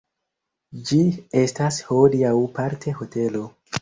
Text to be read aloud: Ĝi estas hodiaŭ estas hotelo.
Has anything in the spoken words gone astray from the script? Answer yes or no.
yes